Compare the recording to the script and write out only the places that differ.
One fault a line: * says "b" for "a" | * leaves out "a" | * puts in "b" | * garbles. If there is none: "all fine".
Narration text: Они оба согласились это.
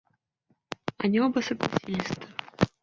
all fine